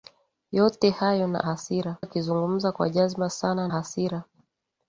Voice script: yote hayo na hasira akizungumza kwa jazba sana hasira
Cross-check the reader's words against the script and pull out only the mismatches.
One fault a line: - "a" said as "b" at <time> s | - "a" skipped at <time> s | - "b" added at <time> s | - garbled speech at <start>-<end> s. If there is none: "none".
none